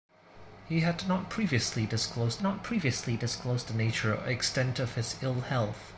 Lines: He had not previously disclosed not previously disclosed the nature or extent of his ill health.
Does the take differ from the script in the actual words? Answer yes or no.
no